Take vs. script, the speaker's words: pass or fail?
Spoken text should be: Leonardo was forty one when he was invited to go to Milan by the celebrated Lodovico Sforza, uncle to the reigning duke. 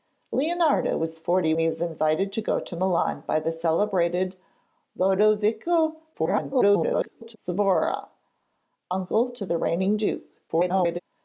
fail